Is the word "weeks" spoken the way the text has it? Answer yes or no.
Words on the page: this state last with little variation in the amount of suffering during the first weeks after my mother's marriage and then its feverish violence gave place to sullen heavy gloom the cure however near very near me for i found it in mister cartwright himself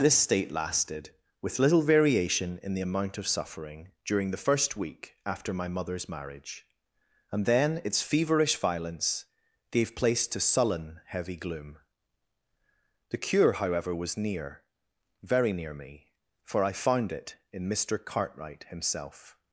no